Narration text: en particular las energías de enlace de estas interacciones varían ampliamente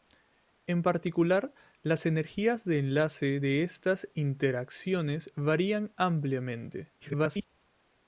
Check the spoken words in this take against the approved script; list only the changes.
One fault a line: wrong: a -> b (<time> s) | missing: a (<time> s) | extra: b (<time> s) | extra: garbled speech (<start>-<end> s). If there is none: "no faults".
extra: garbled speech (7.0-7.4 s)